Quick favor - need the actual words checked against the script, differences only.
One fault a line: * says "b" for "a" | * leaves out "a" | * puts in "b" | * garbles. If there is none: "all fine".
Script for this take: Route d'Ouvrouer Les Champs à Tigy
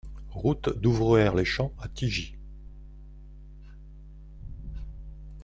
all fine